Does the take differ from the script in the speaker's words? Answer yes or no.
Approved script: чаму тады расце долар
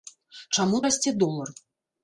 yes